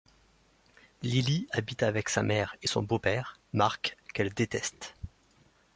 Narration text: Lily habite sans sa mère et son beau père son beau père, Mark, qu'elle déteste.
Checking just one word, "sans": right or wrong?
wrong